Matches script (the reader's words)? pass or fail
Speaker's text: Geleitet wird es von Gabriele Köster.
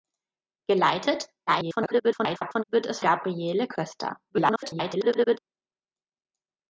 fail